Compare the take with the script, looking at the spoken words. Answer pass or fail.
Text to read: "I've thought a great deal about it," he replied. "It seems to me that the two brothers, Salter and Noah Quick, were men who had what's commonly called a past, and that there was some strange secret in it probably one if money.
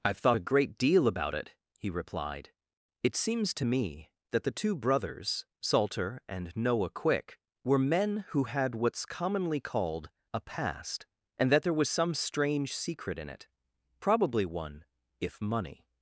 pass